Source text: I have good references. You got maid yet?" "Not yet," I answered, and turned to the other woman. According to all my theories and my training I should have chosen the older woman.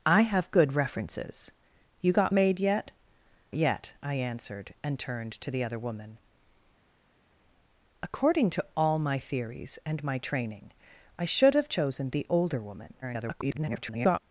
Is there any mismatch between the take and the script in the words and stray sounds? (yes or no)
yes